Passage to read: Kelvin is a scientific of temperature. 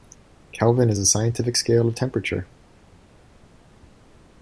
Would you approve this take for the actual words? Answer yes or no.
no